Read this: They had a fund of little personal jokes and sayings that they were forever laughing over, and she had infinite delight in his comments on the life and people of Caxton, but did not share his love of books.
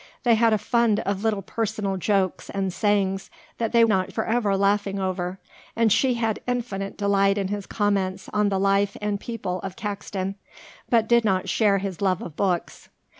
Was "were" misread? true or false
true